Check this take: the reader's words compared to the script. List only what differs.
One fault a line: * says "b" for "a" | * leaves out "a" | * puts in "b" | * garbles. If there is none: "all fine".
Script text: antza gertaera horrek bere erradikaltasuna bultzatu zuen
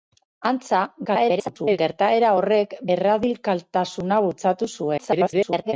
* garbles
* leaves out "bere"
* garbles